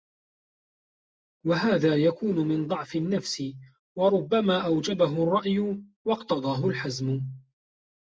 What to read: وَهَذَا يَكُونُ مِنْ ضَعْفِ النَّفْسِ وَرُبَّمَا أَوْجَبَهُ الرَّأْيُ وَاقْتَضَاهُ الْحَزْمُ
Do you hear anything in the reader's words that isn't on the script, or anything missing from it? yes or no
no